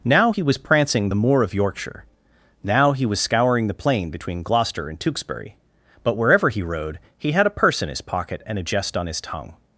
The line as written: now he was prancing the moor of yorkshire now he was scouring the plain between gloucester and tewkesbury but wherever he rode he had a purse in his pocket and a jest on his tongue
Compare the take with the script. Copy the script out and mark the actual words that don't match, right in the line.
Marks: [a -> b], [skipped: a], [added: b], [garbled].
now he was prancing the moor of yorkshire now he was scouring the plain between gloucester and tewkesbury but wherever he rode he had a purse in his pocket and a jest on his tongue